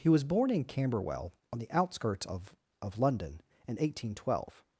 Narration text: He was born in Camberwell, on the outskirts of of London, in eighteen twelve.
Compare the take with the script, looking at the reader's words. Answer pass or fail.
pass